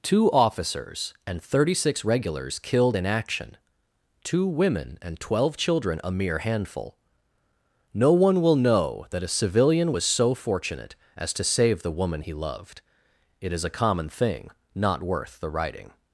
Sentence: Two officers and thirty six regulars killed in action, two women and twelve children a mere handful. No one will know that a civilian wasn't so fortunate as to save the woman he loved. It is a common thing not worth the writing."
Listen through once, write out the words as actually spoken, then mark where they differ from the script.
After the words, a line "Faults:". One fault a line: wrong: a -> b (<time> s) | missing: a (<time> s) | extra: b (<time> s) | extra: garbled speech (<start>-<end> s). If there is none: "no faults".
Two officers and thirty six regulars killed in action, two women and twelve children a mere handful. No one will know that a civilian was so fortunate as to save the woman he loved. It is a common thing not worth the writing."
Faults:
wrong: wasn't -> was (9.9 s)